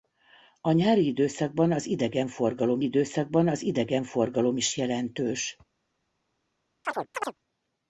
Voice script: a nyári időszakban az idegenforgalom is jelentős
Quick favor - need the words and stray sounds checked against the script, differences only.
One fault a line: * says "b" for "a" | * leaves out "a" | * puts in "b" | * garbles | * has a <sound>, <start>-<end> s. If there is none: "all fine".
* puts in "időszakban az idegenforgalom"
* has a chirp, 6.8-7.4 s